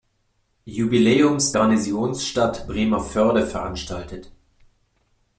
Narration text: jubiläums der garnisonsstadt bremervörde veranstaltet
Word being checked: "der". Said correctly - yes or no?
no